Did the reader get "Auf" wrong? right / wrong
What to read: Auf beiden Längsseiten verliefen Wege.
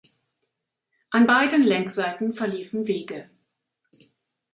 wrong